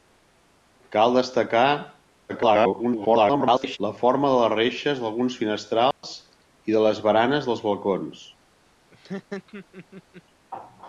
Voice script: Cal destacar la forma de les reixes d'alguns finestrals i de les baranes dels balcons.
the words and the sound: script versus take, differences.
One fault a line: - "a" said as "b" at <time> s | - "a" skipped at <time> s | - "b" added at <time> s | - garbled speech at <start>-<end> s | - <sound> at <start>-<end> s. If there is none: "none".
- garbled speech at 2.3-3.8 s
- dropout at 5.9-6.0 s
- laugh at 8.9-10.2 s